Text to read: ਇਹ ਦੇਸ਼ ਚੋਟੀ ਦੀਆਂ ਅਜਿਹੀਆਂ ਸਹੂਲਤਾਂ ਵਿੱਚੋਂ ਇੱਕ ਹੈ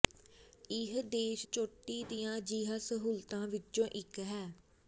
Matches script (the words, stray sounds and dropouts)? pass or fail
pass